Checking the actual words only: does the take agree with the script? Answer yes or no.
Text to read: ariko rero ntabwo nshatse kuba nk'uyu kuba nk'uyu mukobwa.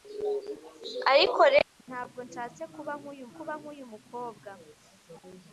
yes